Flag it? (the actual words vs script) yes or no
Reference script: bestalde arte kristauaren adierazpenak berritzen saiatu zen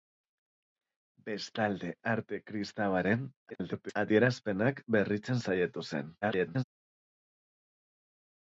yes